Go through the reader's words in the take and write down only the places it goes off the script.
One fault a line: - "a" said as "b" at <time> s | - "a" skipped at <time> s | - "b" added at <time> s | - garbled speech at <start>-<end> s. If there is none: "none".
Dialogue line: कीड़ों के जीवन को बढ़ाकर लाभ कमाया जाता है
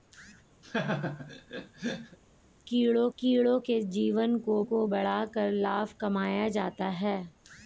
- "कीड़ों" added at 3.2 s
- "को" added at 4.6 s